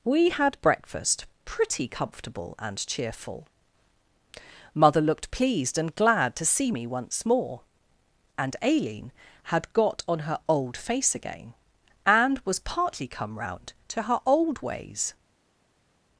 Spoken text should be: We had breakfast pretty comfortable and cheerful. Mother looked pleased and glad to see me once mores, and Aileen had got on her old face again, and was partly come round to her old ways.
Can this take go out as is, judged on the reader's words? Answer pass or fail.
fail